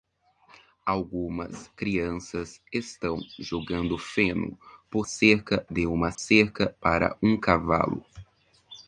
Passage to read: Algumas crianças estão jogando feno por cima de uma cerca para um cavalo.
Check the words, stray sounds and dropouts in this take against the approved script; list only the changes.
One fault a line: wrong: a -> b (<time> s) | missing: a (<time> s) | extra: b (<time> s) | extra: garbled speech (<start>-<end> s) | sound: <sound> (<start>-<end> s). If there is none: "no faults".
wrong: cima -> cerca (5.0 s)
sound: dropout (6.2-6.2 s)